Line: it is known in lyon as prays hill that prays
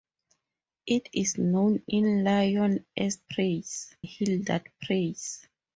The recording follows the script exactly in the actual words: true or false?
true